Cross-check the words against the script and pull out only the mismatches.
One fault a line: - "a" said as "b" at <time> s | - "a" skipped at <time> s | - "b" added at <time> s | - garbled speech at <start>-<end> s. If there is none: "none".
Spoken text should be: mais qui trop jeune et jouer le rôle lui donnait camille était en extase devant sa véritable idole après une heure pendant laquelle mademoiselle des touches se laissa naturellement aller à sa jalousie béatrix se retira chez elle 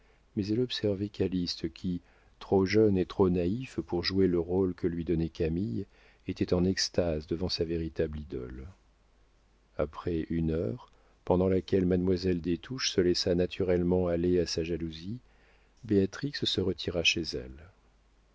- "elle observait calyste" added at 0.5 s
- "trop naïf pour" added at 3.0 s
- "que" added at 4.7 s